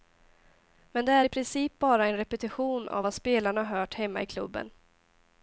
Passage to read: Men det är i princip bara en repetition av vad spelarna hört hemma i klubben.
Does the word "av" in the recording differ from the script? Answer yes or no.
no